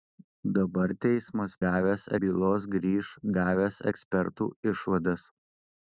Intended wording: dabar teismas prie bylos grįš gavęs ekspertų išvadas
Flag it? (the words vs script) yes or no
yes